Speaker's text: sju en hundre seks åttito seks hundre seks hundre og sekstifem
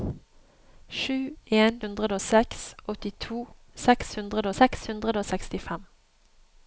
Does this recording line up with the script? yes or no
yes